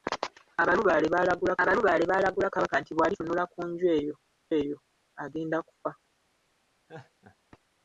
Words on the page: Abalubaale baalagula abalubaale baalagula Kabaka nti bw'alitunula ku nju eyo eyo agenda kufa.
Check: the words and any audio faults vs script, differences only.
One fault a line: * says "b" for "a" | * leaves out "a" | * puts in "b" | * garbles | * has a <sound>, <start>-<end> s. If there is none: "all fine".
* has a laugh, 6.9-7.4 s